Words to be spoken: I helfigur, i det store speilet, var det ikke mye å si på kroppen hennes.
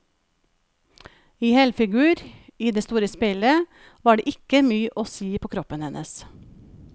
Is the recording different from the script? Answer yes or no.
no